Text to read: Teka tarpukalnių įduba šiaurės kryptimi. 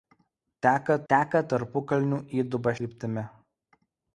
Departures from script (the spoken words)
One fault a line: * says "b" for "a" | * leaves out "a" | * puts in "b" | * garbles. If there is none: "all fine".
* puts in "teka"
* leaves out "šiaurės"